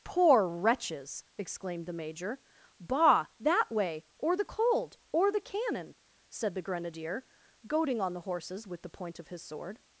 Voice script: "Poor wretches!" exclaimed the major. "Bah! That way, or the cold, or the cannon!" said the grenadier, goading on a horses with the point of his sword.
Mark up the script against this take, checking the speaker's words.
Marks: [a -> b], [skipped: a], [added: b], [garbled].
"Poor wretches!" exclaimed the major. "Bah! That way, or the cold, or the cannon!" said the grenadier, goading on [a -> the] horses with the point of his sword.